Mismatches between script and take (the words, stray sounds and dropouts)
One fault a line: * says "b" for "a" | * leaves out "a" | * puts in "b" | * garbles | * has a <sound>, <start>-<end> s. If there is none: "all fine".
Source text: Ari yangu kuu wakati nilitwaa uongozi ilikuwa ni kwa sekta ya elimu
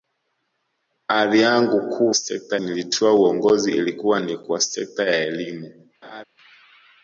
* says "sekta" for "wakati"
* has a laugh, 6.0-6.2 s